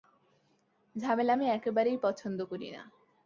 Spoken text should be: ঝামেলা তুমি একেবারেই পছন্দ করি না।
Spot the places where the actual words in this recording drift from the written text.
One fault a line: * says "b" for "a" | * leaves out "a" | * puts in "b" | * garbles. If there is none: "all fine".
* says "আমি" for "তুমি"